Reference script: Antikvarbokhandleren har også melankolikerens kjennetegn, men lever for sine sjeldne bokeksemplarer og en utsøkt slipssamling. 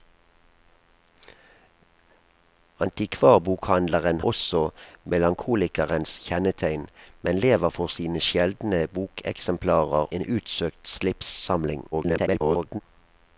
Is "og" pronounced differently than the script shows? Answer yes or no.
yes